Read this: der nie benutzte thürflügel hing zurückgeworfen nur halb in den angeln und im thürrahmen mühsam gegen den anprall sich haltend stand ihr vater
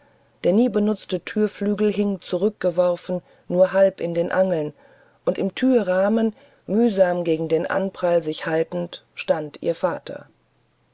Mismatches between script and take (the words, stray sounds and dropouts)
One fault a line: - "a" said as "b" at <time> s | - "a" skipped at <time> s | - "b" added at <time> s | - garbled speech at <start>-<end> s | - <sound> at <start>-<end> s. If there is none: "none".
none